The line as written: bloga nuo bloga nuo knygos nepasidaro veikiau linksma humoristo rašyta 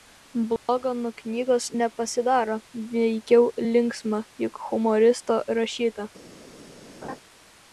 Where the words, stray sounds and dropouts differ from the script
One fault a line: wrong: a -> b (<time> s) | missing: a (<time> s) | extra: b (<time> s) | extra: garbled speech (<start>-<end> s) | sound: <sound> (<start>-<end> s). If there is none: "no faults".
sound: dropout (0.6-0.7 s)
missing: bloga nuo (1.1 s)
extra: juk (4.5 s)
sound: laugh (7.0-7.2 s)